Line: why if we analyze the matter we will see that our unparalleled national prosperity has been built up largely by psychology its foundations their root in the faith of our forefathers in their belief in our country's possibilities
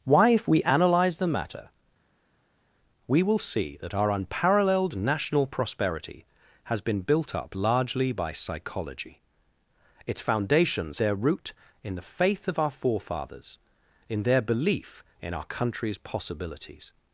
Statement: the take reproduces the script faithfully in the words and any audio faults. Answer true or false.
true